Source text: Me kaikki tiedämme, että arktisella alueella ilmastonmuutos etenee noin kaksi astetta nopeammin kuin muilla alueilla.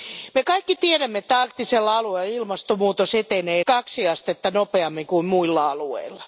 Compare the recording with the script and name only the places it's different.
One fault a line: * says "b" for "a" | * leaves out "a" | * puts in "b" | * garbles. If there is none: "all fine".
* leaves out "noin"